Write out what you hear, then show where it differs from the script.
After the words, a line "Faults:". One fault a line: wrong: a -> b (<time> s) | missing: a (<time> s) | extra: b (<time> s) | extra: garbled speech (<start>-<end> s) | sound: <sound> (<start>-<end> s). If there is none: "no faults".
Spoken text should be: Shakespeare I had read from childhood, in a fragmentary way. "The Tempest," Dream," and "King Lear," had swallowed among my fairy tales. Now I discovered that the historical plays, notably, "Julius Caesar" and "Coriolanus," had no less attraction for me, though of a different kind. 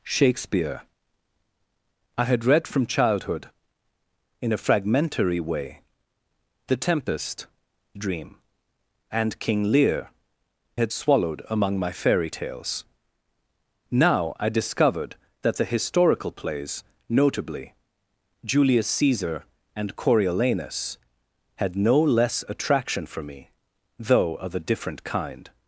Shakespeare I had read from childhood, in a fragmentary way. "The Tempest," Dream," and "King Lear," had swallowed among my fairy tales. Now I discovered that the historical plays, notably, "Julius Caesar" and "Coriolanus," had no less attraction for me, though of a different kind.
Faults:
no faults